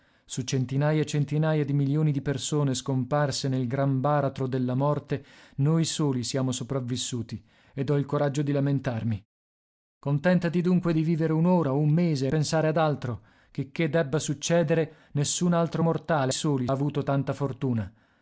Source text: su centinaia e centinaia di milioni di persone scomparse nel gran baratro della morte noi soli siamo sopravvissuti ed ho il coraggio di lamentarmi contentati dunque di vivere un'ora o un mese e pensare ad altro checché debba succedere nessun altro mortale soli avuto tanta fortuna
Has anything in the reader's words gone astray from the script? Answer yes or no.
no